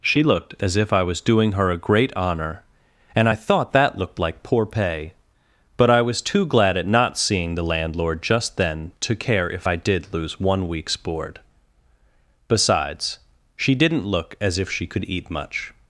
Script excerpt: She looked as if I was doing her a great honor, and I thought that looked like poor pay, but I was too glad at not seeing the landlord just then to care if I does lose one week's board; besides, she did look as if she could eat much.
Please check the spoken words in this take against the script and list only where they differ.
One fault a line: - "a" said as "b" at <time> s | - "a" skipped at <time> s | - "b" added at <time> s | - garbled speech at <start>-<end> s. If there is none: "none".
- "does" said as "did" at 9.8 s
- "did" said as "didn't" at 13.7 s